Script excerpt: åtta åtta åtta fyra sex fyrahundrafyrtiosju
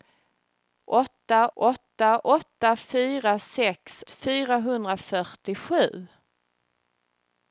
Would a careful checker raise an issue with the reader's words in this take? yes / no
no